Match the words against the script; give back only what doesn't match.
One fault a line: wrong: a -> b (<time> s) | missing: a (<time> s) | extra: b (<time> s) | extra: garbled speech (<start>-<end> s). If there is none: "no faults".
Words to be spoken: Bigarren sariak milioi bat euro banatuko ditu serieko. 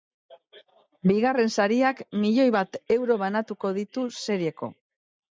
no faults